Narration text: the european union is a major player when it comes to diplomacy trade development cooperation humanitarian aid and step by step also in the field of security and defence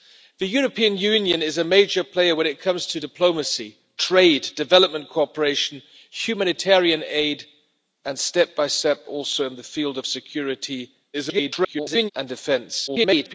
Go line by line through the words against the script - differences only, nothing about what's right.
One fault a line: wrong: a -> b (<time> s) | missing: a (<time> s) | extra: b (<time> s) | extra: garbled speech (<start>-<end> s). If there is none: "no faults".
extra: garbled speech (11.1-12.1 s)
extra: garbled speech (12.9-13.3 s)